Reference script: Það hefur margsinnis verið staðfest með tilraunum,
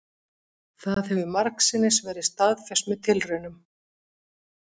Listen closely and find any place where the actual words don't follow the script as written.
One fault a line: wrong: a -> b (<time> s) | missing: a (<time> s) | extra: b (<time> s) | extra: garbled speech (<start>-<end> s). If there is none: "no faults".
no faults